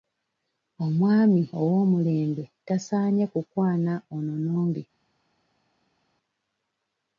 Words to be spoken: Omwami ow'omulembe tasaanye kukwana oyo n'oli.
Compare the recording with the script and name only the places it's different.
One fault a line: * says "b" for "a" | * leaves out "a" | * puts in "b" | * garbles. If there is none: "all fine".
* says "ono" for "oyo"